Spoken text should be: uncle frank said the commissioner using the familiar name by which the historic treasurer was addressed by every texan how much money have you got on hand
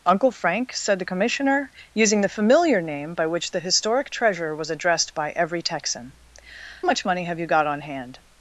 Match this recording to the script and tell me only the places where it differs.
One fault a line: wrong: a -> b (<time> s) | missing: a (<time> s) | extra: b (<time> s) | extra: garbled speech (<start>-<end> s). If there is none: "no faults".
missing: how (6.1 s)